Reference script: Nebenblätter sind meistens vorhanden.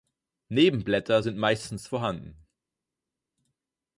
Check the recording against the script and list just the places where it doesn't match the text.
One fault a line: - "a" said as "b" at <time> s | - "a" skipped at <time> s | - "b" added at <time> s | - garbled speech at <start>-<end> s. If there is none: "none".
none